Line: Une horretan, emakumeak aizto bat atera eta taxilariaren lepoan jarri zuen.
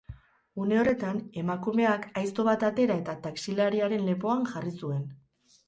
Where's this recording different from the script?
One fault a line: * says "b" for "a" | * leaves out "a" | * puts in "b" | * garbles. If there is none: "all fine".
all fine